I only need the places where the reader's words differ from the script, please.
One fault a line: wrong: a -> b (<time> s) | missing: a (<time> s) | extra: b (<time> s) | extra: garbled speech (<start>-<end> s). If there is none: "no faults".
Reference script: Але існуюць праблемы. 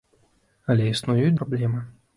no faults